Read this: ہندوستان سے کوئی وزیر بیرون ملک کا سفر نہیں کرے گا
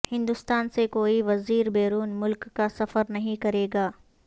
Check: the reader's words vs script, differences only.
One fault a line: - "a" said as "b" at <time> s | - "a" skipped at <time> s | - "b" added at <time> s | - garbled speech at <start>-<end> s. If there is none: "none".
none